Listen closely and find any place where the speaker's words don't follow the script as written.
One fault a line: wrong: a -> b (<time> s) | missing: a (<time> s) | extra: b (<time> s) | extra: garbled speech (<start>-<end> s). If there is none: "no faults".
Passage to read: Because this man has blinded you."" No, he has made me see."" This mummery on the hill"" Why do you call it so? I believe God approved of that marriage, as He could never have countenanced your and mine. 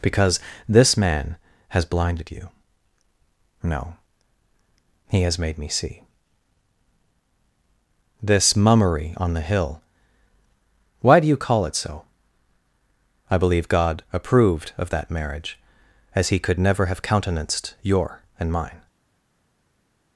no faults